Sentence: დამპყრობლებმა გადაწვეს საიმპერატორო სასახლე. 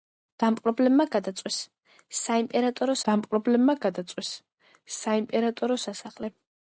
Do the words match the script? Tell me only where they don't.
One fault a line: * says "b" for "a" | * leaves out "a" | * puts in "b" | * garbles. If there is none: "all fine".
* puts in "დამპყრობლებმა გადაწვეს საიმპერატორო"